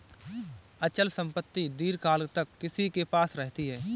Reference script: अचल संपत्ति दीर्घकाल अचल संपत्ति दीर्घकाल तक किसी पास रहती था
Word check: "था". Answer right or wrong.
wrong